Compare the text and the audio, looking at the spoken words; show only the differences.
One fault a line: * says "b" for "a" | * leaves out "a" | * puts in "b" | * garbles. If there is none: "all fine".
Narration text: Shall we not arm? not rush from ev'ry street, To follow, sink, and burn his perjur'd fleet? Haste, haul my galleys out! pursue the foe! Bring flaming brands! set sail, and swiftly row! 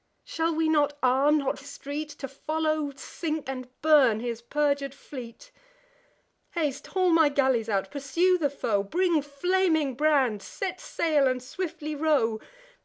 * leaves out "rush from ev'ry"